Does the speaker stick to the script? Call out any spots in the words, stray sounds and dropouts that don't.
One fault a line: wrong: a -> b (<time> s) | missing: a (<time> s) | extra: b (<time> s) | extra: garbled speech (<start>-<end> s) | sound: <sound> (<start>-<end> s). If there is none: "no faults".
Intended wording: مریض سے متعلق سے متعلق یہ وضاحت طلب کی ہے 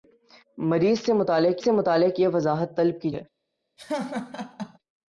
sound: laugh (3.8-4.8 s)